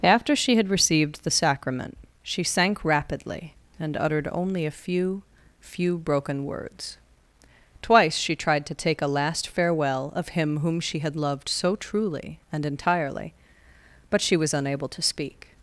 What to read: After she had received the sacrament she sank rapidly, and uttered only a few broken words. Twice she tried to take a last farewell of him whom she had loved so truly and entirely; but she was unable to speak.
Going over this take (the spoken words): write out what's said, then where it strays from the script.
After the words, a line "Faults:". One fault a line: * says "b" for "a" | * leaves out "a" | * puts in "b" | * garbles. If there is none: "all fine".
After she had received the sacrament she sank rapidly, and uttered only a few few broken words. Twice she tried to take a last farewell of him whom she had loved so truly and entirely; but she was unable to speak.
Faults:
* puts in "few"